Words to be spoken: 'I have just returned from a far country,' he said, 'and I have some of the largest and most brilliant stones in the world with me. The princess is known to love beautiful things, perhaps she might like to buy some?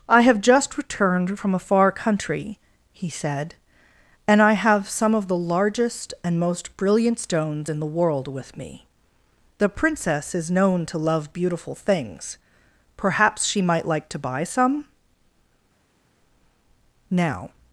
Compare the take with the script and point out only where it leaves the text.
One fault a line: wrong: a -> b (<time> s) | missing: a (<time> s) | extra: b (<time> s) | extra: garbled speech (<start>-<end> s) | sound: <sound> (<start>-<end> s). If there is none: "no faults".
extra: Now (17.1 s)